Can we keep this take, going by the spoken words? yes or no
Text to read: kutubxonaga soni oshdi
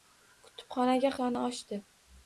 yes